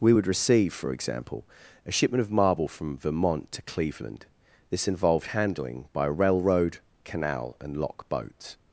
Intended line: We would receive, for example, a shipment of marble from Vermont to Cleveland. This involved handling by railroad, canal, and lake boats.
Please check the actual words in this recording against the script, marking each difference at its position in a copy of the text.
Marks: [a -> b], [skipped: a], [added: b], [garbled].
We would receive, for example, a shipment of marble from Vermont to Cleveland. This involved handling by railroad, canal, and [lake -> lock] boats.